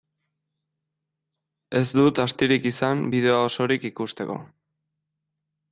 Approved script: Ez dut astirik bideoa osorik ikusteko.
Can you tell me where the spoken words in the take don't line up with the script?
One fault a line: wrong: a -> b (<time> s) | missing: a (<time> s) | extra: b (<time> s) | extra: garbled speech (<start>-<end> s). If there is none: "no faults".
extra: izan (2.7 s)